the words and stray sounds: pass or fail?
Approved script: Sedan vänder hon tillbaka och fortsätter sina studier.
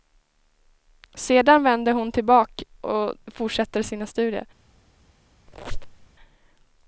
fail